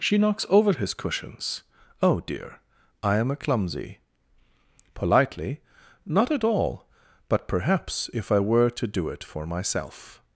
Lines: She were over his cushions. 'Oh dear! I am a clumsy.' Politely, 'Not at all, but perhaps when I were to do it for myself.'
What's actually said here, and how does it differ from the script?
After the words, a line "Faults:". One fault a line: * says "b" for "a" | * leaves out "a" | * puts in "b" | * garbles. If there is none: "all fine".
She knocks over his cushions. 'Oh dear! I am a clumsy.' Politely, 'Not at all, but perhaps if I were to do it for myself.'
Faults:
* says "knocks" for "were"
* says "if" for "when"